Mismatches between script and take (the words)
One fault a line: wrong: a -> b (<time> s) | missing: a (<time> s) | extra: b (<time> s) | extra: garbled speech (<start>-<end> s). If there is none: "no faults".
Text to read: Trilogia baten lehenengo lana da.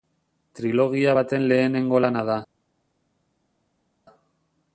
no faults